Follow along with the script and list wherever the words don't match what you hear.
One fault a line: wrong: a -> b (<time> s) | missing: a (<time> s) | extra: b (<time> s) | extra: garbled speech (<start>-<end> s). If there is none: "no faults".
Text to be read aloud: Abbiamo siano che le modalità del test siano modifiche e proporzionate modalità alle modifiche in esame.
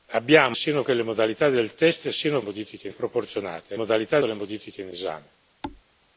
no faults